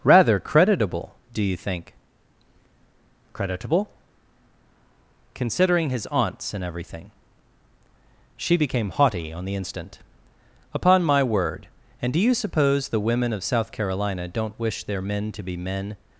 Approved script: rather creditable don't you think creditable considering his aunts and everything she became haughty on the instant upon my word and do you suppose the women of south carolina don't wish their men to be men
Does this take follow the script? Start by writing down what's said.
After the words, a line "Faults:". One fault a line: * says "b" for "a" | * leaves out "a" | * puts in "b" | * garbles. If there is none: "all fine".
rather creditable do you think creditable considering his aunts and everything she became haughty on the instant upon my word and do you suppose the women of south carolina don't wish their men to be men
Faults:
* says "do" for "don't"